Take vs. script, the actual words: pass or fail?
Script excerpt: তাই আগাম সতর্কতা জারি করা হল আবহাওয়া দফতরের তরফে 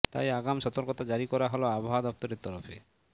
pass